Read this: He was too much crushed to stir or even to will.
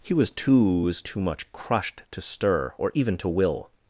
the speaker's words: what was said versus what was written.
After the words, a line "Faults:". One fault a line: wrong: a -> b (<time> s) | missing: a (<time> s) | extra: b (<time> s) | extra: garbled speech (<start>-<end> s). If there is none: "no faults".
He was too was too much crushed to stir or even to will.
Faults:
extra: was too (0.8 s)